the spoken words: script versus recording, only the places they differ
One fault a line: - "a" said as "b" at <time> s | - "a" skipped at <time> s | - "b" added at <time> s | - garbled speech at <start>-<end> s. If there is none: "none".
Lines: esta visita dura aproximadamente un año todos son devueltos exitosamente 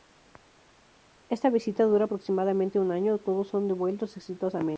none